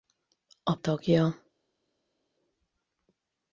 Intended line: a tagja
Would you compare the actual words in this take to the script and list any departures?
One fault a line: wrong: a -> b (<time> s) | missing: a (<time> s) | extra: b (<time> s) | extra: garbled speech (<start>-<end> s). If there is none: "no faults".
no faults